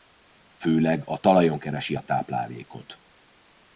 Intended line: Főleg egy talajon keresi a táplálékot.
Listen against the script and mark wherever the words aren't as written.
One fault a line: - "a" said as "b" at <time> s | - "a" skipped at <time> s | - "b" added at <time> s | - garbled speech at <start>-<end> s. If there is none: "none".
- "egy" said as "a" at 1.1 s